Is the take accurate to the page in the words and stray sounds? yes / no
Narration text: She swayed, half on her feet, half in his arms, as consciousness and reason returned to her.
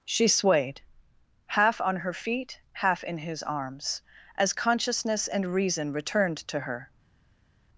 yes